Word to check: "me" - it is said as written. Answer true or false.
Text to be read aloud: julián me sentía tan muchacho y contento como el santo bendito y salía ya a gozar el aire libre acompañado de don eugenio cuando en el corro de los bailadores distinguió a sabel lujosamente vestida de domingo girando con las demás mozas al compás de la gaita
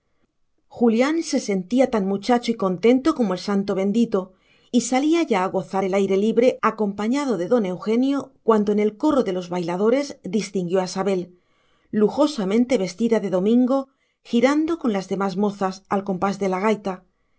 false